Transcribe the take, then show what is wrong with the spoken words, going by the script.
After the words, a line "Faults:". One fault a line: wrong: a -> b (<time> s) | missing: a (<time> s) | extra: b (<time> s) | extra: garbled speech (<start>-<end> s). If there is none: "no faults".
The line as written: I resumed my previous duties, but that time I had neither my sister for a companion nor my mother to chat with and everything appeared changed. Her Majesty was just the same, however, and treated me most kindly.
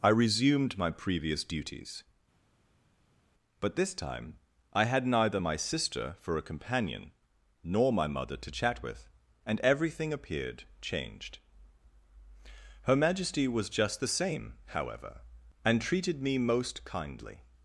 I resumed my previous duties, but this time I had neither my sister for a companion nor my mother to chat with and everything appeared changed. Her Majesty was just the same, however, and treated me most kindly.
Faults:
wrong: that -> this (3.8 s)